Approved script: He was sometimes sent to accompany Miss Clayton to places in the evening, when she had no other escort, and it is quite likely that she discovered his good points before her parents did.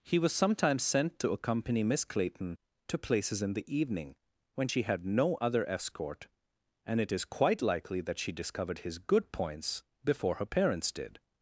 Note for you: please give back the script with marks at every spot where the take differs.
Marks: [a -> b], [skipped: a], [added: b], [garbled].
He was sometimes sent to accompany Miss Clayton to places in the evening, when she had no other escort, and it is quite likely that she discovered his good points before her parents did.